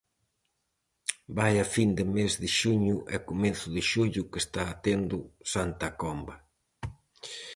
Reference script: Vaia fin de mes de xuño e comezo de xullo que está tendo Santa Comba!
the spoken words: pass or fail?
pass